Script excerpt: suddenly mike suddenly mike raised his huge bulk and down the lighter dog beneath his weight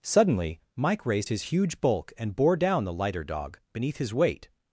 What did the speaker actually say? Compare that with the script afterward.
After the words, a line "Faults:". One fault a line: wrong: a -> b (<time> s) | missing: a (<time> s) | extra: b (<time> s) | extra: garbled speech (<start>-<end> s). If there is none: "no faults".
suddenly mike raised his huge bulk and bore down the lighter dog beneath his weight
Faults:
missing: suddenly mike (1.1 s)
extra: bore (2.3 s)